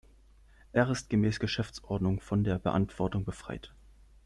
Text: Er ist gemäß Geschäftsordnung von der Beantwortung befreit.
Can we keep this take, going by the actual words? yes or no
yes